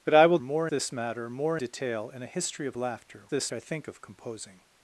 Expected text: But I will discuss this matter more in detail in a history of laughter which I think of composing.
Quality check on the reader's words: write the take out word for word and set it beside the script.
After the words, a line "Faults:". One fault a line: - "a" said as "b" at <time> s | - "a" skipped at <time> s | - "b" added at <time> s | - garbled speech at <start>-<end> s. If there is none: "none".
But I will more this matter more detail in a history of laughter this I think of composing.
Faults:
- "discuss" said as "more" at 0.4 s
- "in" skipped at 1.6 s
- "which" said as "this" at 3.3 s